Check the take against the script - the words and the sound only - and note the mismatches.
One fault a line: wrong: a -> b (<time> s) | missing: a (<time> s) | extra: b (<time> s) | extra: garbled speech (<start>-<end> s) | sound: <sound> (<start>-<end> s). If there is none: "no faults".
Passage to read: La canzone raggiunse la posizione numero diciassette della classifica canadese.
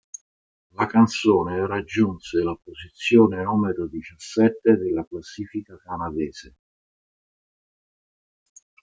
no faults